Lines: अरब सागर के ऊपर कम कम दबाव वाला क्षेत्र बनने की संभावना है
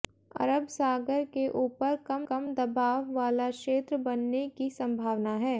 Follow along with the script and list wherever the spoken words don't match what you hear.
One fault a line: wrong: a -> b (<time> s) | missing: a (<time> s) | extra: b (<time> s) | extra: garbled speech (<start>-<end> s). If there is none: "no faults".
no faults